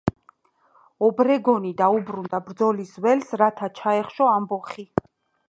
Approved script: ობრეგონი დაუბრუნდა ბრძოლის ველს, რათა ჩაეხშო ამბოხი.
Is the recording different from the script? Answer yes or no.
no